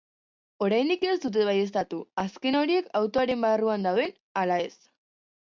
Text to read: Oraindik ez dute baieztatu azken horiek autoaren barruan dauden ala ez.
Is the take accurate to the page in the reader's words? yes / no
yes